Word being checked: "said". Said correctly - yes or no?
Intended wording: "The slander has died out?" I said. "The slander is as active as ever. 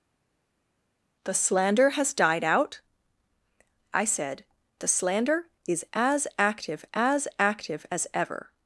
yes